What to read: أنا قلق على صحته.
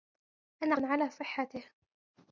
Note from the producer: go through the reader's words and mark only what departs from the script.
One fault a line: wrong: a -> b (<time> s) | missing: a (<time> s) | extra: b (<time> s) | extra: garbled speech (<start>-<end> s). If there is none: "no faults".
missing: قلق (0.8 s)